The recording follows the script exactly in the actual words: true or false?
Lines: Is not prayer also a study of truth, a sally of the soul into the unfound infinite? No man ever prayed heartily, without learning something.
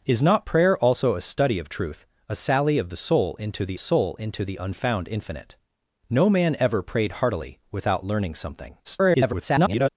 false